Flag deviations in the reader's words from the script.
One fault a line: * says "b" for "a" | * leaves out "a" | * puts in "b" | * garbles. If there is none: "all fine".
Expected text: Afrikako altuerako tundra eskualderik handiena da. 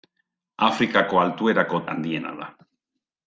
* leaves out "tundra eskualderik"